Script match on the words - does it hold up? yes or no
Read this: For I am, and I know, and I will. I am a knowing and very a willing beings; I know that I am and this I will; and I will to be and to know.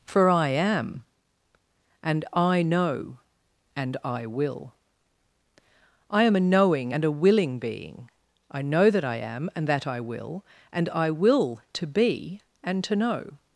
no